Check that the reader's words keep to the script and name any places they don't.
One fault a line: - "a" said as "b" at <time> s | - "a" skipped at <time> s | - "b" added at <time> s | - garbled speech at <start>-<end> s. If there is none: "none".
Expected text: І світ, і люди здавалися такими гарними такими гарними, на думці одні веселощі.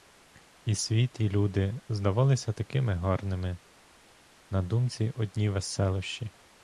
- "такими гарними" skipped at 3.6 s